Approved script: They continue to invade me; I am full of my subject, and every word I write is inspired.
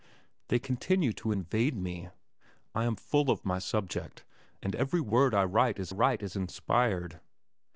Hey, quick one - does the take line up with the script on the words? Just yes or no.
no